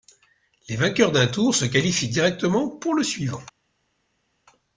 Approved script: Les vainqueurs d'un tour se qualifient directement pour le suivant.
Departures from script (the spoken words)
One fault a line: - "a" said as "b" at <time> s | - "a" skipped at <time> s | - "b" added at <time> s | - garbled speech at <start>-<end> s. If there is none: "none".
none